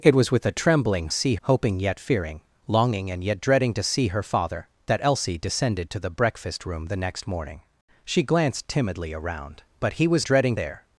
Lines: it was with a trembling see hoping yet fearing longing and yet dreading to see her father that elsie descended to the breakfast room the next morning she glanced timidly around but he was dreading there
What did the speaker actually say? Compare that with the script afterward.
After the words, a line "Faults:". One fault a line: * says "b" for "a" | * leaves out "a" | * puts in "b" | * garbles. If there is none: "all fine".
it was with a trembling see hoping yet fearing longing and yet dreading to see her father that elsie descended to the breakfast room the next morning she glanced timidly around but he was dreading there
Faults:
all fine